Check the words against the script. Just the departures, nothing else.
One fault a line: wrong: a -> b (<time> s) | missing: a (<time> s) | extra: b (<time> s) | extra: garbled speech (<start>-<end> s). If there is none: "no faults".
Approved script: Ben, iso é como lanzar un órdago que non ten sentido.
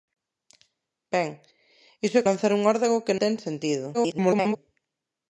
missing: como (2.3 s)
missing: non (3.2 s)
extra: garbled speech (3.9-4.6 s)